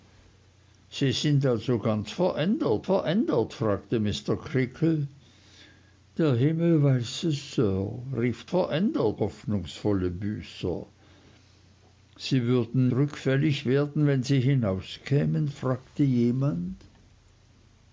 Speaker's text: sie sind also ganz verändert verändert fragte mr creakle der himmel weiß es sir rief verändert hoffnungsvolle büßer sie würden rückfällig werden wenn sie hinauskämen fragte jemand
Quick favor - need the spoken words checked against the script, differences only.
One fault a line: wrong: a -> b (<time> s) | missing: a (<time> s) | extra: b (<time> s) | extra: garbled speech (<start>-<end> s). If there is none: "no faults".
no faults